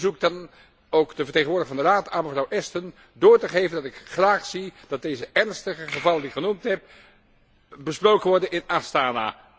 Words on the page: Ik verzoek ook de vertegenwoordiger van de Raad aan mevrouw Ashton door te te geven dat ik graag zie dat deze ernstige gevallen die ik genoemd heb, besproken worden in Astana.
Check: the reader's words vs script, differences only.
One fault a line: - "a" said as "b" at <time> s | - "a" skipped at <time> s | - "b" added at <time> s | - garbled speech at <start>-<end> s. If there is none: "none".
- "dan" added at 0.3 s
- "te" skipped at 3.5 s